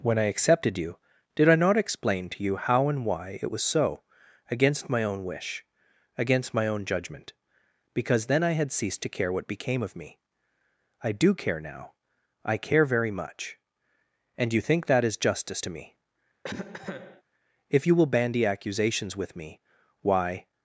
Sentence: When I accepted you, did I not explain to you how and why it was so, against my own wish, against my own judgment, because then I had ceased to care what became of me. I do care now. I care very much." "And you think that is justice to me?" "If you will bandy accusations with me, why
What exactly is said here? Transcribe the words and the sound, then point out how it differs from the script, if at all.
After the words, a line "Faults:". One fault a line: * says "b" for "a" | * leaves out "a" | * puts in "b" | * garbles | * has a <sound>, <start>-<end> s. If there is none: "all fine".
When I accepted you, did I not explain to you how and why it was so, against my own wish, against my own judgment, because then I had ceased to care what became of me. I do care now. I care very much." "And you think that is justice to me?" "If you will bandy accusations with me, why
Faults:
* has a cough, 16.4-17.2 s